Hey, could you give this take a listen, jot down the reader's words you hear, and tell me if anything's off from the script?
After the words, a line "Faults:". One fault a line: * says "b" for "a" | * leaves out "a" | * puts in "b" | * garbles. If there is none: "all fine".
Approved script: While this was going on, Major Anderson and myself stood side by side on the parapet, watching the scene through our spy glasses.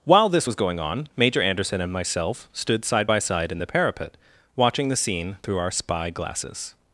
While this was going on, Major Anderson and myself stood side by side in the parapet, watching the scene through our spy glasses.
Faults:
* says "in" for "on"